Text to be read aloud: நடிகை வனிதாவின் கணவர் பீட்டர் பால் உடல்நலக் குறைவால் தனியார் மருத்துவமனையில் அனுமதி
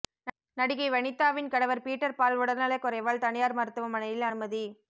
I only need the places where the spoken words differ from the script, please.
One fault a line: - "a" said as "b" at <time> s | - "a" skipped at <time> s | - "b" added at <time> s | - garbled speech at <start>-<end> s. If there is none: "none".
none